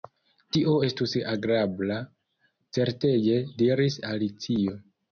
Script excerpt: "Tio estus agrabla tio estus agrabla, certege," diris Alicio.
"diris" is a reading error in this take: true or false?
false